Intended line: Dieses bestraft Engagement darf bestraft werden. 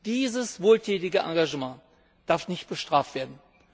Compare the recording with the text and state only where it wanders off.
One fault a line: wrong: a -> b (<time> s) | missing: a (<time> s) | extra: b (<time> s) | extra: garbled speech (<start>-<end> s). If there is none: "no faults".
wrong: bestraft -> wohltätige (0.6 s)
extra: nicht (2.5 s)